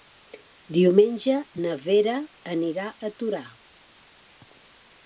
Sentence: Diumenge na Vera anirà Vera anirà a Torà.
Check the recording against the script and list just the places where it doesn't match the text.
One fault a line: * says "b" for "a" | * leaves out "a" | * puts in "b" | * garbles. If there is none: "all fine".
* leaves out "Vera anirà"